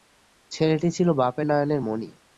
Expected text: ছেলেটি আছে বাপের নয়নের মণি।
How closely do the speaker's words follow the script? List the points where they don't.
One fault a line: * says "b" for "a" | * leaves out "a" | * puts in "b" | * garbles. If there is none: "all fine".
* says "ছিল" for "আছে"